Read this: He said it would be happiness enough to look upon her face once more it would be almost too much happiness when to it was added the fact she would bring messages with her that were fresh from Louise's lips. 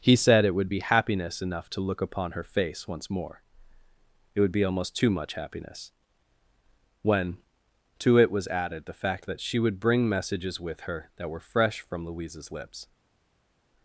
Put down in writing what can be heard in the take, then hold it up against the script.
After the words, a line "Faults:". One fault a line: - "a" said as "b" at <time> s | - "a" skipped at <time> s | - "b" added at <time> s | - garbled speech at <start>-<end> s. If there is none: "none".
He said it would be happiness enough to look upon her face once more it would be almost too much happiness when to it was added the fact that she would bring messages with her that were fresh from Louise's lips.
Faults:
- "that" added at 9.2 s